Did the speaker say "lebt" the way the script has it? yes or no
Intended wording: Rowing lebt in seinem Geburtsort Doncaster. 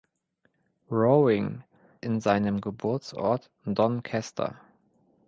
no